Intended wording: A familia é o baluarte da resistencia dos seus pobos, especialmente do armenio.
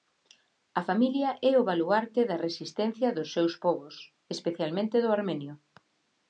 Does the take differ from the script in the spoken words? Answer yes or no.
no